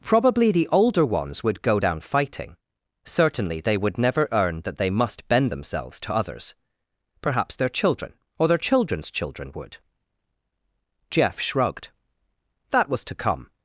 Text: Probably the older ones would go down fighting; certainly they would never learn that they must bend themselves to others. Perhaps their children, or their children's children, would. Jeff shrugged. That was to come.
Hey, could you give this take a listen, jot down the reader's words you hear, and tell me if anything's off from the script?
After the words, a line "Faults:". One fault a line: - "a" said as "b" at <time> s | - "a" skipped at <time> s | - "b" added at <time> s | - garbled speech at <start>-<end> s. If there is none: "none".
Probably the older ones would go down fighting; certainly they would never earn that they must bend themselves to others. Perhaps their children, or their children's children, would. Jeff shrugged. That was to come.
Faults:
- "learn" said as "earn" at 4.3 s